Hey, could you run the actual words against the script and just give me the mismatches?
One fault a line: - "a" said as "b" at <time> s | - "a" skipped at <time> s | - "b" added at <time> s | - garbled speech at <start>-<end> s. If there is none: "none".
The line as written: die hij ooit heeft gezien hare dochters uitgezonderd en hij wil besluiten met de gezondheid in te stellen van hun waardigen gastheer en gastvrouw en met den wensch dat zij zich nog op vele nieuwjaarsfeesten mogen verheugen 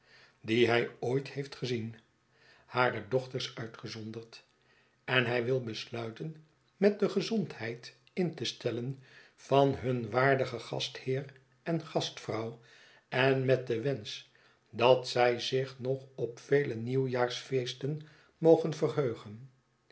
none